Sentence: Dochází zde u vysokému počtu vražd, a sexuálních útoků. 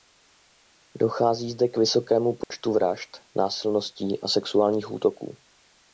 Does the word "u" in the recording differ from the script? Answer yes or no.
yes